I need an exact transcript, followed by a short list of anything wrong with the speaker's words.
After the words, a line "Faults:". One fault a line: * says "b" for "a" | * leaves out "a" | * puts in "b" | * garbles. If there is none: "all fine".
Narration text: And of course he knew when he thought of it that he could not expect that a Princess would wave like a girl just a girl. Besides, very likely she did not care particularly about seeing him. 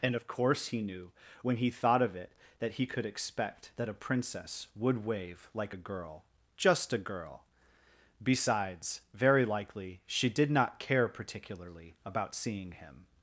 And of course he knew when he thought of it that he could expect that a Princess would wave like a girl just a girl. Besides, very likely she did not care particularly about seeing him.
Faults:
* leaves out "not"